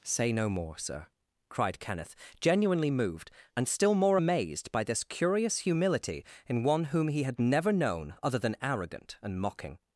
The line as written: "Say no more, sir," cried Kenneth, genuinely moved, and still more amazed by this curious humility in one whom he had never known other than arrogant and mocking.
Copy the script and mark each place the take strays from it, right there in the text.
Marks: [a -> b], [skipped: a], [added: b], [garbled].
"Say no more, sir," cried Kenneth, genuinely moved, and still more amazed by this curious humility in one whom he had never known other than arrogant and mocking.